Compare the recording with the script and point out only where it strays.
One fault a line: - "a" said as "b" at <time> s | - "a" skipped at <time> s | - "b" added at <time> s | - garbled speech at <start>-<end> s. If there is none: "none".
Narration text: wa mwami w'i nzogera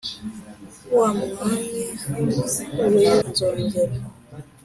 none